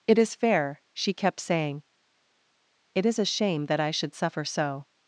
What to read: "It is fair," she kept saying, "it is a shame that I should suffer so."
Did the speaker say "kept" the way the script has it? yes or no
yes